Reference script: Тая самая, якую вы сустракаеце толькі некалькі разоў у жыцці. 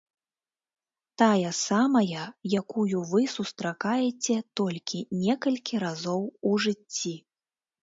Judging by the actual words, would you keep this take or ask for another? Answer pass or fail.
pass